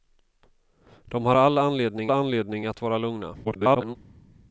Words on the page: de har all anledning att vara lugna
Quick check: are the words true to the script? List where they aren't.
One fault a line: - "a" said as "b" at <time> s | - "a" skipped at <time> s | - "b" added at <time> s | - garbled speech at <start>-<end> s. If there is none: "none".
- "anledning" added at 2.1 s
- garbled speech at 3.4-4.0 s